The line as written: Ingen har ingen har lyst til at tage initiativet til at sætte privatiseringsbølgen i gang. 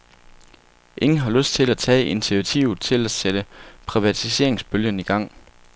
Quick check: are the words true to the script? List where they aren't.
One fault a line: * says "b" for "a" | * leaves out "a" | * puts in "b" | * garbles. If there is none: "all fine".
* leaves out "ingen har"